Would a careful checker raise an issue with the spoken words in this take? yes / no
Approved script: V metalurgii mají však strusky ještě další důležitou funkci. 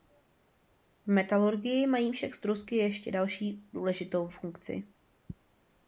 no